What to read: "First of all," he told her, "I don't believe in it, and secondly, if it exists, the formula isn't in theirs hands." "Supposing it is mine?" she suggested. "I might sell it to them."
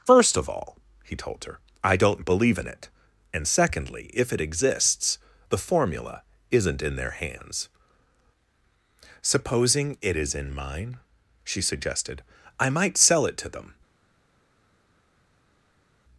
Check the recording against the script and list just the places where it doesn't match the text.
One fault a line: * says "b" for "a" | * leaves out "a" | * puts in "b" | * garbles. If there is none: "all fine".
* says "their" for "theirs"
* puts in "in"